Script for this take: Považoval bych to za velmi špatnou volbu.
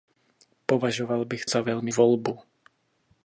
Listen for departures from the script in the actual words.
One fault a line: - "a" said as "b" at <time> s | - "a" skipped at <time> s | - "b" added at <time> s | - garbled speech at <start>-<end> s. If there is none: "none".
- "to" skipped at 1.4 s
- "špatnou" skipped at 1.9 s